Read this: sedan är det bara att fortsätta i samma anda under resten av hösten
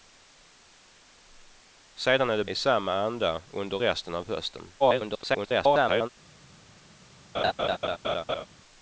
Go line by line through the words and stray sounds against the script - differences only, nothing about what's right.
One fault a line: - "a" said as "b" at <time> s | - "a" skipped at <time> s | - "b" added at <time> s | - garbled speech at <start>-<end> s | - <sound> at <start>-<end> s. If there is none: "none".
- "bara att fortsätta" skipped at 2.5 s
- garbled speech at 4.8-6.1 s
- laugh at 7.3-8.5 s